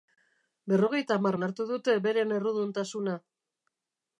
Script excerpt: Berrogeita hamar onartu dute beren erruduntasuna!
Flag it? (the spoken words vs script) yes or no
no